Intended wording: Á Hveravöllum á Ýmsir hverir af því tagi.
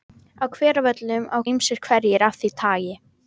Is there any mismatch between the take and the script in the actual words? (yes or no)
no